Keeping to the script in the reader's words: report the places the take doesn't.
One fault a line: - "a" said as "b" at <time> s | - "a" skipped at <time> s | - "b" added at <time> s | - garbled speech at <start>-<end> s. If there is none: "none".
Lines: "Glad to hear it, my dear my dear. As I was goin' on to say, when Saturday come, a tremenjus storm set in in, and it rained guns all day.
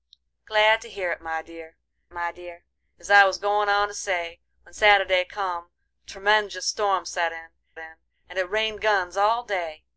none